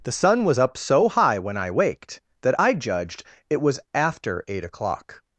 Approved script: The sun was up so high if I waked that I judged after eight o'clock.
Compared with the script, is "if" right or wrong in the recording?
wrong